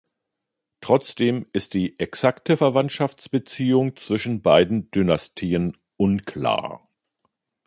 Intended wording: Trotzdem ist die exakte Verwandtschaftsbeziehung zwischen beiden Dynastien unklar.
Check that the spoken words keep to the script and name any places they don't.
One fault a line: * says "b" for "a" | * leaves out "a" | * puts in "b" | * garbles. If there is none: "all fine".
all fine